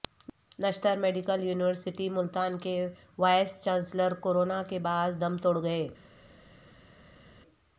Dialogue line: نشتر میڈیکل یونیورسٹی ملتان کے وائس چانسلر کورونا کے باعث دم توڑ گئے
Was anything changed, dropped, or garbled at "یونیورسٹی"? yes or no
no